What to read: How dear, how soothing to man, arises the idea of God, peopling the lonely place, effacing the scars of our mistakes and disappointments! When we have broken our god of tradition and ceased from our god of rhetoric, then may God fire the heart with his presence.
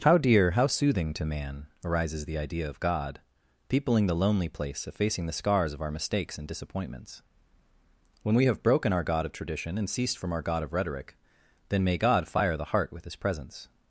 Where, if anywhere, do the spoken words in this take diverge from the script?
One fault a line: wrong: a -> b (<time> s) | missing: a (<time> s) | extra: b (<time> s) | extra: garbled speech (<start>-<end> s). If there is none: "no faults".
no faults